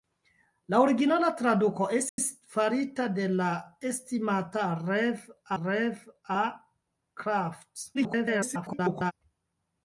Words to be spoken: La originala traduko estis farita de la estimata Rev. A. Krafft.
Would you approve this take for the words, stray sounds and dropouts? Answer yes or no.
no